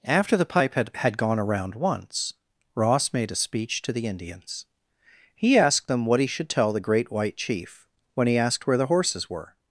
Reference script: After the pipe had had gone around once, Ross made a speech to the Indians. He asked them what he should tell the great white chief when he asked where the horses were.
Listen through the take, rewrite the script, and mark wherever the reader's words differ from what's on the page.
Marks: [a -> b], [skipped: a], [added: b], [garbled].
After the pipe had had gone around once, Ross made a speech to the Indians. He asked them what he should tell the great white chief when he asked where the horses were.